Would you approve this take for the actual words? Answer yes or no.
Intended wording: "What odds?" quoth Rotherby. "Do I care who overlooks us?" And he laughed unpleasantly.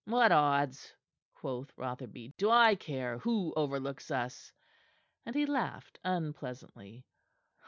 yes